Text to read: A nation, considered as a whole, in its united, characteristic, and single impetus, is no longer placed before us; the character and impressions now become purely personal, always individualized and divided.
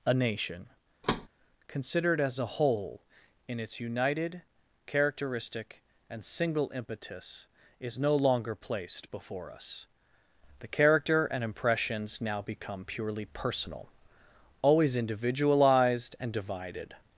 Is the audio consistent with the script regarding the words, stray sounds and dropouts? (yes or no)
no